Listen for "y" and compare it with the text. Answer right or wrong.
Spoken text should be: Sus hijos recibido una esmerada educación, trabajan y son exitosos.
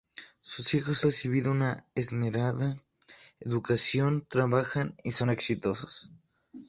right